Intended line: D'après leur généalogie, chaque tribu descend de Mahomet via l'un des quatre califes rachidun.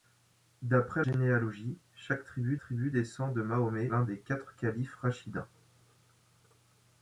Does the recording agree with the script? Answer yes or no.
no